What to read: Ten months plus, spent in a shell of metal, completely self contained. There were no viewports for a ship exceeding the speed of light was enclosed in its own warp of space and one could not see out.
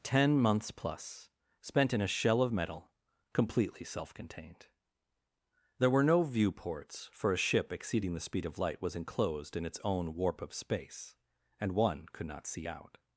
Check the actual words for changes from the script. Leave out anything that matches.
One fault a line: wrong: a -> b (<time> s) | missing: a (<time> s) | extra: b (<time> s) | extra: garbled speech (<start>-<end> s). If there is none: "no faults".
no faults